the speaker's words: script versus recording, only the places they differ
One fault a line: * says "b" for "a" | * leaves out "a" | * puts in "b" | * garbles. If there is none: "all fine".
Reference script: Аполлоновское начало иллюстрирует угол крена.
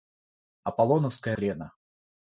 * leaves out "начало иллюстрирует угол"